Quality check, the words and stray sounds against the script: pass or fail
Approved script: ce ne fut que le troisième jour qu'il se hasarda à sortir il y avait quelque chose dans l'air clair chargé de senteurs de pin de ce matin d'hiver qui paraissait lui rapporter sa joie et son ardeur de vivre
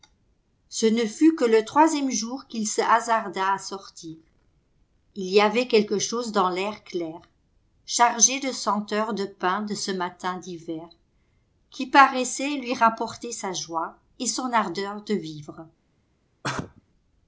fail